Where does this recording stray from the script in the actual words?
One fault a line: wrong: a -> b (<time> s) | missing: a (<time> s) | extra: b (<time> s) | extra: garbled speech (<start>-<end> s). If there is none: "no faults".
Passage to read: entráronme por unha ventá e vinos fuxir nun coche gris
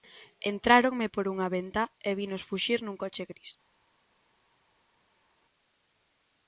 no faults